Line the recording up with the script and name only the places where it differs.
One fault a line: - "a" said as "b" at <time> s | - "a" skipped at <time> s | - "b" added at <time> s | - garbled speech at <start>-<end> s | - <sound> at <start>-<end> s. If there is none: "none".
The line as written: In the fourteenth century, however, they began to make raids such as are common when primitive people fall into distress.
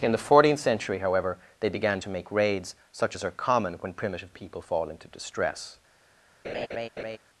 - laugh at 6.4-7.2 s